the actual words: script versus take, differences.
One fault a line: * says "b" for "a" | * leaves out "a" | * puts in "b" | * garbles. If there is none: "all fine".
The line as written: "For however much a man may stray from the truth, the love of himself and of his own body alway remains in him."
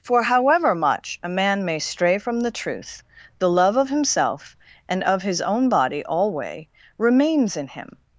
all fine